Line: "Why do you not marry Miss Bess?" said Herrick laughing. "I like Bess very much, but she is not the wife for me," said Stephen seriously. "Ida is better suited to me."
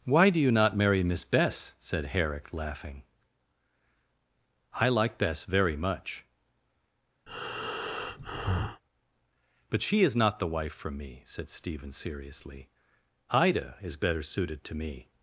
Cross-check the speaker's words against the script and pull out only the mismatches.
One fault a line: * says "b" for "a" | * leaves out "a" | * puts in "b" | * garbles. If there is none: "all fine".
all fine